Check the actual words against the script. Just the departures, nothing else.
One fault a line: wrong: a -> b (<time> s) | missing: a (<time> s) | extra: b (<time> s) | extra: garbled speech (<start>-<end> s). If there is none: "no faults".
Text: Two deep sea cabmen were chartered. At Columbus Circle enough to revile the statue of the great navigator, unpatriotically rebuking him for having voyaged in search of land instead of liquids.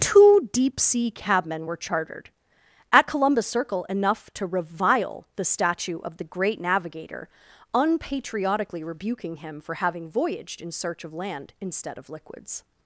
no faults